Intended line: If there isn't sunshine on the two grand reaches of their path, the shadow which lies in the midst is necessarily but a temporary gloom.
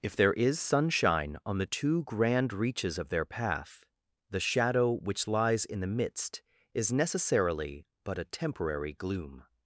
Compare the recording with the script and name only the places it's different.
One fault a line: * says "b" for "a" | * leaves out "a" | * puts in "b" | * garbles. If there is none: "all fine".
* says "is" for "isn't"